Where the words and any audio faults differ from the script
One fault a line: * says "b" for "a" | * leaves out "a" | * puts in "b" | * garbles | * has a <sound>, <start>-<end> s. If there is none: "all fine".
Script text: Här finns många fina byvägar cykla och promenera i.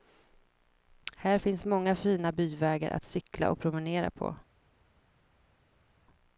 * puts in "att"
* says "på" for "i"